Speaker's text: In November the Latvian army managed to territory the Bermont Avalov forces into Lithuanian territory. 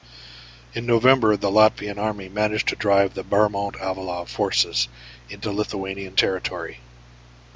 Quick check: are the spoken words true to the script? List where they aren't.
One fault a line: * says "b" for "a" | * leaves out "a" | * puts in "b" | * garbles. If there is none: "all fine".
* says "drive" for "territory"